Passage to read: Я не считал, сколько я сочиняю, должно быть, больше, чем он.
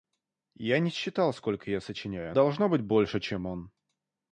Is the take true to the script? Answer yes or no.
yes